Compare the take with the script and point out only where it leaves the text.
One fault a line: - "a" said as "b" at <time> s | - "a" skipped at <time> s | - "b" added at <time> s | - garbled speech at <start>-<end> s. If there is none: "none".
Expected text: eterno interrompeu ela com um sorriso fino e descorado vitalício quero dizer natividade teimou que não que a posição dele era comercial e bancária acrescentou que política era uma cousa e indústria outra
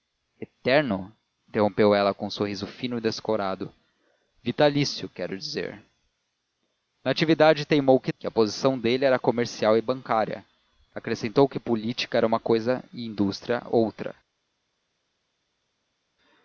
- "não" skipped at 8.1 s